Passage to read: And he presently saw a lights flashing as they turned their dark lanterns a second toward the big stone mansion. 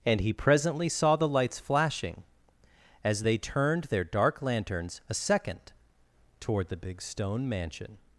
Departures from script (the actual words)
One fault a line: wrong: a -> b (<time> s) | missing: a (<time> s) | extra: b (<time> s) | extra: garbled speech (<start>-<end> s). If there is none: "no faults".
wrong: a -> the (1.1 s)